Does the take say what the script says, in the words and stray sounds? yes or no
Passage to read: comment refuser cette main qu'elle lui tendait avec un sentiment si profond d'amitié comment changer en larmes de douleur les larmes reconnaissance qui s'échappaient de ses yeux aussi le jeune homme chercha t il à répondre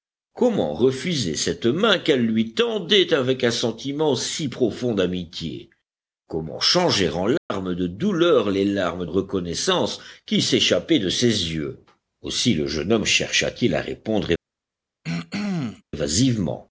no